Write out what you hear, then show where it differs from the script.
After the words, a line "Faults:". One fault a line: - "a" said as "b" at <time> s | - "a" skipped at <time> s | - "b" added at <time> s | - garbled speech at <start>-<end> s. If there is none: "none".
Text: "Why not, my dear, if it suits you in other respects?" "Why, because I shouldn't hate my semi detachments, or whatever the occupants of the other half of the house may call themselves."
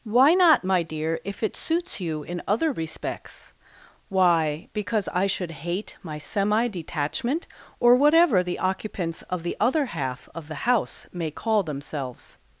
"Why not, my dear, if it suits you in other respects?" "Why, because I should hate my semi detachment, or whatever the occupants of the other half of the house may call themselves."
Faults:
- "shouldn't" said as "should" at 5.3 s
- "detachments" said as "detachment" at 6.7 s